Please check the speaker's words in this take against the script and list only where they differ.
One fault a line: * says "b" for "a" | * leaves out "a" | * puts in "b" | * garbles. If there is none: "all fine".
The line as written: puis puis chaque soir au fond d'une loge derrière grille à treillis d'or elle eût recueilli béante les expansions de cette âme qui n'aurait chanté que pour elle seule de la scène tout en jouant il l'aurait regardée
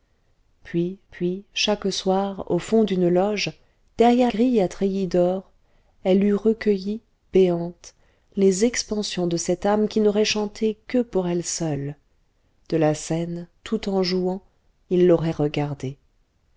all fine